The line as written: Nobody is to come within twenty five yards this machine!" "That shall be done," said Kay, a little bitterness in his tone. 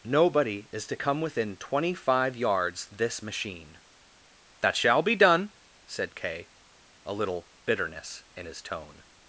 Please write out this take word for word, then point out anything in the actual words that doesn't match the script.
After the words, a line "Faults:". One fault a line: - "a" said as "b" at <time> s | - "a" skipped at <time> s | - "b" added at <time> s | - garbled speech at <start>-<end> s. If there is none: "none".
Nobody is to come within twenty five yards this machine!" "That shall be done," said Kay, a little bitterness in his tone.
Faults:
none